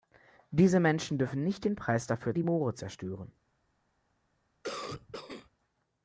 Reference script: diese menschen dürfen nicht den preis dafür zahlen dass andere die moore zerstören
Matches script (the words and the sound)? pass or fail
fail